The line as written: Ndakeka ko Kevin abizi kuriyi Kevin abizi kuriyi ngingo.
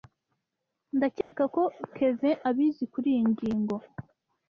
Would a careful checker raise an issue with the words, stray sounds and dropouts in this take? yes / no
yes